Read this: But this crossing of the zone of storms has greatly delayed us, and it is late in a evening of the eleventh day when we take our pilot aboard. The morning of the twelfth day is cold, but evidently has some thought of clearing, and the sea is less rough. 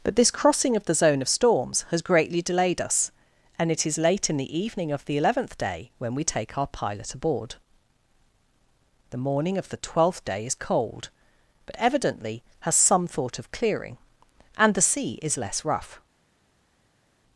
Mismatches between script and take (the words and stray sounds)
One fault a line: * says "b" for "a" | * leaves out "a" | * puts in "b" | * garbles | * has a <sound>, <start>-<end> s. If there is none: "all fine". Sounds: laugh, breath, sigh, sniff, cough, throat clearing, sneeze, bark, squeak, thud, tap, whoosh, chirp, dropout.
* says "the" for "a"